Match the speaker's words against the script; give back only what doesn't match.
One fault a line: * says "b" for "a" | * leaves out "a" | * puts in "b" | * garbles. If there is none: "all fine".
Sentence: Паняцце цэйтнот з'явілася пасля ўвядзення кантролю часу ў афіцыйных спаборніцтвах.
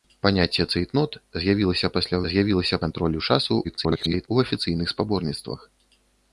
* says "з'явілася" for "ўвядзення"
* garbles